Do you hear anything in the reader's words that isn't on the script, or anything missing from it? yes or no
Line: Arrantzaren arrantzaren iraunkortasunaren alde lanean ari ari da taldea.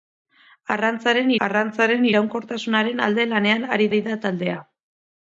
no